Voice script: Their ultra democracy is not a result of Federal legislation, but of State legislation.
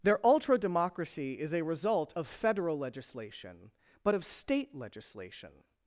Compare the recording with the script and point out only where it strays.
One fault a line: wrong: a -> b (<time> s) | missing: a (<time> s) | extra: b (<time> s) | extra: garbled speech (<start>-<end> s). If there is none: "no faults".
missing: not (1.5 s)